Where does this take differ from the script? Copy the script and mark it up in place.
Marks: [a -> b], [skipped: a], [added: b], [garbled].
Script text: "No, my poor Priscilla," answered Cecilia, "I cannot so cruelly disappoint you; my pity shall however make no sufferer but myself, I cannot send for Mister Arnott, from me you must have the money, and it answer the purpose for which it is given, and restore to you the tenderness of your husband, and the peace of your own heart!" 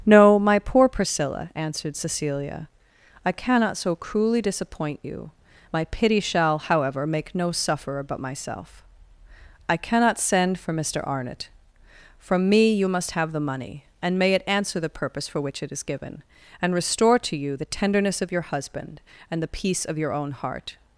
"No, my poor Priscilla," answered Cecilia, "I cannot so cruelly disappoint you; my pity shall however make no sufferer but myself, I cannot send for Mister Arnott, from me you must have the money, and [added: may] it answer the purpose for which it is given, and restore to you the tenderness of your husband, and the peace of your own heart!"